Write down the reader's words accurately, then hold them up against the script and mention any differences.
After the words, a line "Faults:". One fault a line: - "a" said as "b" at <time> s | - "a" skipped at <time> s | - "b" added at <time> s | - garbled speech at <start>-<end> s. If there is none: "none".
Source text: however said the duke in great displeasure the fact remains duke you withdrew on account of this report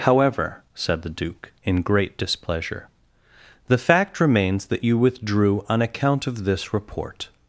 however said the duke in great displeasure the fact remains that you withdrew on account of this report
Faults:
- "duke" said as "that" at 4.7 s